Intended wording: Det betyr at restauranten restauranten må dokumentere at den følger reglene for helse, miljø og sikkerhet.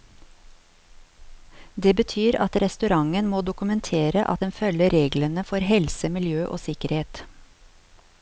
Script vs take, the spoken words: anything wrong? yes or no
yes